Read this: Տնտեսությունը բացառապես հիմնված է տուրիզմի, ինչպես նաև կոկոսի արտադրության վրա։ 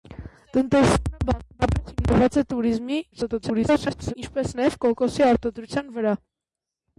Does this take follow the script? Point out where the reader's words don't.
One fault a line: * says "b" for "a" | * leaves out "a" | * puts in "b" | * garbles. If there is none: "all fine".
* garbles